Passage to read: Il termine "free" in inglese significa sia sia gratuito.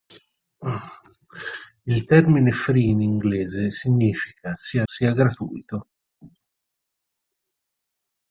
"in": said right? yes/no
yes